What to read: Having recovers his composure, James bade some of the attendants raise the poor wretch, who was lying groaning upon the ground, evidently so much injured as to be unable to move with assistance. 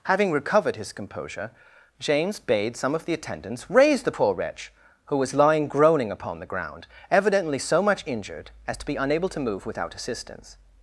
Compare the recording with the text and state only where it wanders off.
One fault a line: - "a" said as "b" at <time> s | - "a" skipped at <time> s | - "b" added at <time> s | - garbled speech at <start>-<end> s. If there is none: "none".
- "recovers" said as "recovered" at 0.3 s
- "with" said as "without" at 9.6 s